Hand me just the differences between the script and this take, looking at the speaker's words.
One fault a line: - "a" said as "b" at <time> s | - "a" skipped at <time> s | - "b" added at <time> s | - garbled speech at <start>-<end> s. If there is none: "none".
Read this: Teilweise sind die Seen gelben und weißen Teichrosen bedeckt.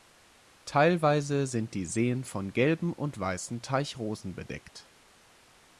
- "von" added at 2.2 s